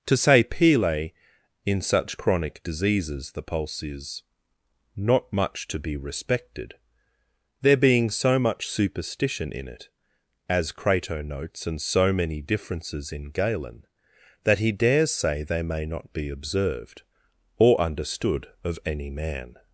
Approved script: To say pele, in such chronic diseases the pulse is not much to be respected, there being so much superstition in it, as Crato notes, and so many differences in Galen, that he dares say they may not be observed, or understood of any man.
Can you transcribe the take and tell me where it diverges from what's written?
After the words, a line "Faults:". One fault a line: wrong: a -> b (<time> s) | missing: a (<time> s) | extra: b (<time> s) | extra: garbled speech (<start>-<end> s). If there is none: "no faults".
To say pele, in such chronic diseases the pulse is not much to be respected, there being so much superstition in it, as Crato notes, and so many differences in Galen, that he dares say they may not be observed, or understood of any man.
Faults:
no faults